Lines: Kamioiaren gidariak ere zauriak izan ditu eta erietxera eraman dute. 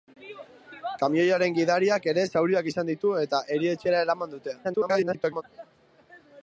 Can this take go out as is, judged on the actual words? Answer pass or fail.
fail